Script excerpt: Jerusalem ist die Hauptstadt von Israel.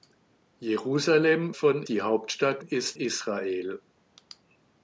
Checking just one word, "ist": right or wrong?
wrong